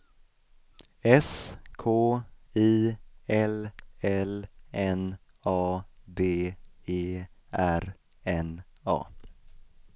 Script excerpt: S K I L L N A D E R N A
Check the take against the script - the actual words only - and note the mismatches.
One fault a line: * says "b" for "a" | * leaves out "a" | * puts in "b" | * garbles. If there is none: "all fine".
all fine